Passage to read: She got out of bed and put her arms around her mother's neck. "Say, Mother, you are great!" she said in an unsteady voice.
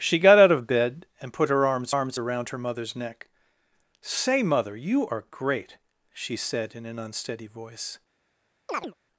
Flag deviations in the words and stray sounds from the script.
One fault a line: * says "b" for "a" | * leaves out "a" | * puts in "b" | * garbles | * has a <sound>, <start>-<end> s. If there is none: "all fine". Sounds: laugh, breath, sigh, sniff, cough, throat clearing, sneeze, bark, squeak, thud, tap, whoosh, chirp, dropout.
* puts in "arms"
* has a chirp, 8.7-8.9 s